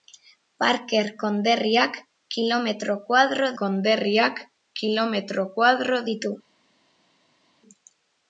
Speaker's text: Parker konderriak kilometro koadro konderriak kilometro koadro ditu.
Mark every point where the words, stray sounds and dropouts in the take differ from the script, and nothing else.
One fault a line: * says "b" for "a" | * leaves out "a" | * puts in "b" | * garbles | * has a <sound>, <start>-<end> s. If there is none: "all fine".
all fine